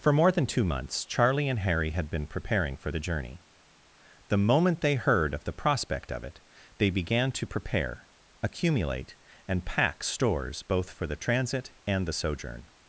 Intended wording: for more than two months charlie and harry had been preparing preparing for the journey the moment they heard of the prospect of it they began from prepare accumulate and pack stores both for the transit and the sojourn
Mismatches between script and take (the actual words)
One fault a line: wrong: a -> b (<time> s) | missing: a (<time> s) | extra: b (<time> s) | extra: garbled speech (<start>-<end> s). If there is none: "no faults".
missing: preparing (2.8 s)
wrong: from -> to (7.3 s)